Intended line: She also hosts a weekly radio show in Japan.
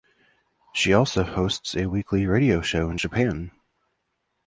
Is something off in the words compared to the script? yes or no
no